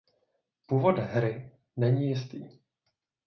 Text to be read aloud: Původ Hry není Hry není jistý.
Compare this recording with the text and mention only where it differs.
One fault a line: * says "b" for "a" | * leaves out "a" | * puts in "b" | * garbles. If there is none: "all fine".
* leaves out "Hry není"